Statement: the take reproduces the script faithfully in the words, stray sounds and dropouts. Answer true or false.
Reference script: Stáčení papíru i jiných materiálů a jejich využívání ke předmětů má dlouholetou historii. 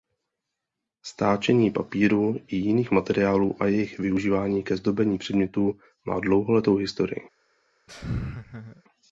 false